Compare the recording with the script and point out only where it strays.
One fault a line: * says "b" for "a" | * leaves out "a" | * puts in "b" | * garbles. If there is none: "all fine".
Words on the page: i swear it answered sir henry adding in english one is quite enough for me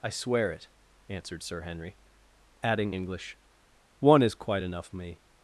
* leaves out "in"
* leaves out "for"